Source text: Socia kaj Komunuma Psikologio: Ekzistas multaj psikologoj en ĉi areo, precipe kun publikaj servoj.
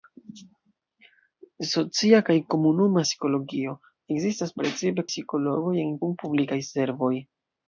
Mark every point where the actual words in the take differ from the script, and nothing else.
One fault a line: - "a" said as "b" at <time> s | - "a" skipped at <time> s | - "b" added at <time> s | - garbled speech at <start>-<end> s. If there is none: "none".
- "multaj" said as "precipe" at 4.6 s
- "ĉi areo precipe" skipped at 6.0 s